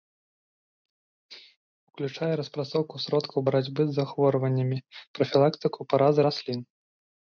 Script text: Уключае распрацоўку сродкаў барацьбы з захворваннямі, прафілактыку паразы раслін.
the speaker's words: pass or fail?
pass